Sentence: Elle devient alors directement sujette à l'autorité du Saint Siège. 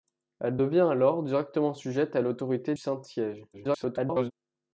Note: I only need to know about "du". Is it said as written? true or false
false